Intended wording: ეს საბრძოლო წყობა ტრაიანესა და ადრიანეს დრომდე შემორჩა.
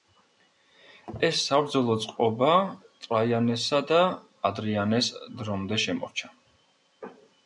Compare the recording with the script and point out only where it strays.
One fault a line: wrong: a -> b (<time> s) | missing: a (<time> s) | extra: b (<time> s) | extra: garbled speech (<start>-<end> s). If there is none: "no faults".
no faults